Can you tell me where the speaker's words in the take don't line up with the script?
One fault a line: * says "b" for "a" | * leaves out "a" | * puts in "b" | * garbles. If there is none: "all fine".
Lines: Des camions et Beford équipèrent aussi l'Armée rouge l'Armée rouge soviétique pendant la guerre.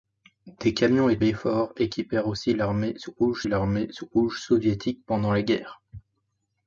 all fine